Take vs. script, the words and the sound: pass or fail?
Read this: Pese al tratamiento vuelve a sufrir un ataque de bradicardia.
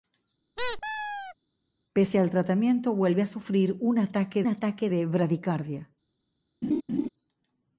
fail